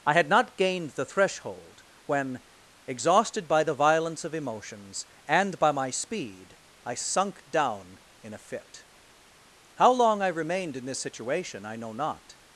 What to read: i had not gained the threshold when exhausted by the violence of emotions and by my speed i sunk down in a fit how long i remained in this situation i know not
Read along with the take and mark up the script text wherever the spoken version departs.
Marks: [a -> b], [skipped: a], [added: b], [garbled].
i had not gained the threshold when exhausted by the violence of emotions and by my speed i sunk down in a fit how long i remained in this situation i know not